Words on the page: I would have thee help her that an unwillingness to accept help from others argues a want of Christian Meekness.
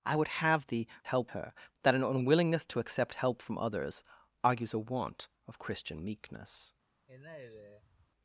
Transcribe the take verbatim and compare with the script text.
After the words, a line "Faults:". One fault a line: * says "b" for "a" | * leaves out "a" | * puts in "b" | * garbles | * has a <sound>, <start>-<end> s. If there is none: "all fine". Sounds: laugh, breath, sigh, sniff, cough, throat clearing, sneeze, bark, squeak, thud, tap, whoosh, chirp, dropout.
I would have thee help her that an unwillingness to accept help from others argues a want of Christian Meekness.
Faults:
* has a sigh, 7.1-8.1 s